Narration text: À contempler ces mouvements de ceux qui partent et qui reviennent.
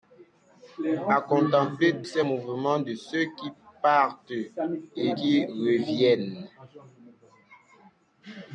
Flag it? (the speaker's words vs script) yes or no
no